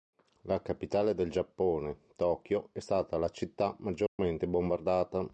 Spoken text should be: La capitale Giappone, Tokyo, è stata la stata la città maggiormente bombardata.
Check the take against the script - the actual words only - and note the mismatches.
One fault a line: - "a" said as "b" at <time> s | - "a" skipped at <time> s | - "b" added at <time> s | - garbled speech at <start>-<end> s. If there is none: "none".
- "del" added at 1.1 s
- "stata la" skipped at 3.3 s